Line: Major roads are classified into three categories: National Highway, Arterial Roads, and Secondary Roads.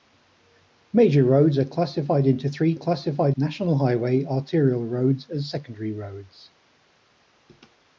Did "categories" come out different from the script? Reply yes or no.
yes